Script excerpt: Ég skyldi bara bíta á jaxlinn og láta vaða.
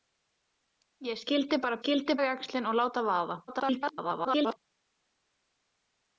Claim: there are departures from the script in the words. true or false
true